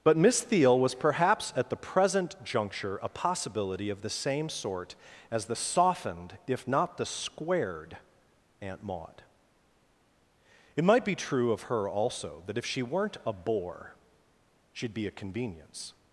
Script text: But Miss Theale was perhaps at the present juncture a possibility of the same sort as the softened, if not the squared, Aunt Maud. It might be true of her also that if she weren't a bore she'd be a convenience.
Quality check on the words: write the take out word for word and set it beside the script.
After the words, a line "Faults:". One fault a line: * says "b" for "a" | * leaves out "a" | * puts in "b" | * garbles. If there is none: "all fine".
But Miss Theale was perhaps at the present juncture a possibility of the same sort as the softened, if not the squared, Aunt Maud. It might be true of her also that if she weren't a bore she'd be a convenience.
Faults:
all fine